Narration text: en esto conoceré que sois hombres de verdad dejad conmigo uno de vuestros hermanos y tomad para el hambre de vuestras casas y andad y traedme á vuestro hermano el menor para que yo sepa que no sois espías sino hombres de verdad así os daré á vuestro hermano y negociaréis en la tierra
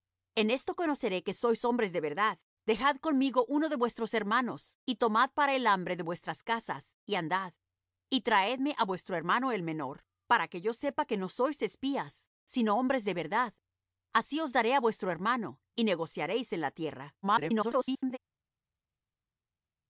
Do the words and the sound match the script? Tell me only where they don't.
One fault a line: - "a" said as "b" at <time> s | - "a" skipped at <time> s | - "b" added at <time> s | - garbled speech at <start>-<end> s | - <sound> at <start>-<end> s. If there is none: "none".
- garbled speech at 17.2-18.2 s